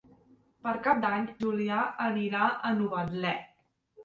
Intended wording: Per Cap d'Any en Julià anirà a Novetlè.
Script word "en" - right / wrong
wrong